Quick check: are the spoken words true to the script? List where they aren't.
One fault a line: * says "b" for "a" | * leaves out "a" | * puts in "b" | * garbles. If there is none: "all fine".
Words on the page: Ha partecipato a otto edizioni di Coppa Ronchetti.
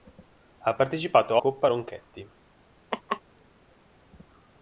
* leaves out "otto edizioni di"